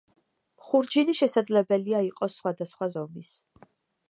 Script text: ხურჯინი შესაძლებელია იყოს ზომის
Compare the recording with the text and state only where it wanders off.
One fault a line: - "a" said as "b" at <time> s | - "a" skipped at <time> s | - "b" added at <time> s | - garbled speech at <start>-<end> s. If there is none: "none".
- "სხვადასხვა" added at 2.4 s